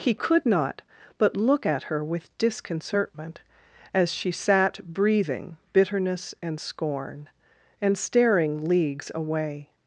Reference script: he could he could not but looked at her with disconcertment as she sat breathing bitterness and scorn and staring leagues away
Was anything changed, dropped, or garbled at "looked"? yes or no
yes